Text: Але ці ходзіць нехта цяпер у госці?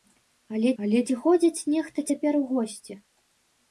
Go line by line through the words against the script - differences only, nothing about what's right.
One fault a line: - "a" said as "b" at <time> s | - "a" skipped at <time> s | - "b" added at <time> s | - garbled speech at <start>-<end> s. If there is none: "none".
- "але" added at 0.8 s